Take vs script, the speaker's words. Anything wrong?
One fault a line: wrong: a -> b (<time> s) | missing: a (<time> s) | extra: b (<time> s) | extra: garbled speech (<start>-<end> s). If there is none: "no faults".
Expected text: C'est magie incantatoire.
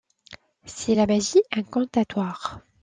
extra: la (0.9 s)